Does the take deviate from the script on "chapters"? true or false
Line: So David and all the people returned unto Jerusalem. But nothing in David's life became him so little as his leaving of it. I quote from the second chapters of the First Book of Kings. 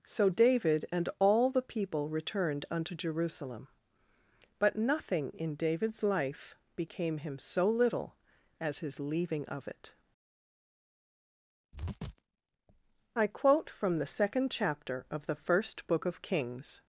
true